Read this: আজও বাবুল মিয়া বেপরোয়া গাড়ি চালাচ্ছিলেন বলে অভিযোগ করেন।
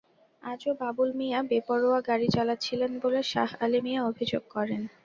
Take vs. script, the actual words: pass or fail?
fail